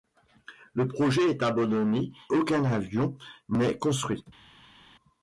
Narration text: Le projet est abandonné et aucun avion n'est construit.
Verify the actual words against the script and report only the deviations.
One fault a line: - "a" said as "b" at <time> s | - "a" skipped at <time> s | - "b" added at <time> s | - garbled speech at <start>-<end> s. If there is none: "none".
- "et" skipped at 2.1 s